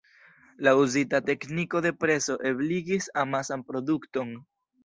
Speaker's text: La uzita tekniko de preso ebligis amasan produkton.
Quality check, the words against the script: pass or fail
pass